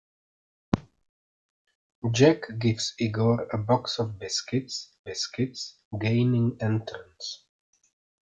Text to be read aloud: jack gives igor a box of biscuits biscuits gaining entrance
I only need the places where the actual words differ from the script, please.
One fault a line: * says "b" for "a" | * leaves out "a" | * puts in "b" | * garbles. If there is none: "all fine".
all fine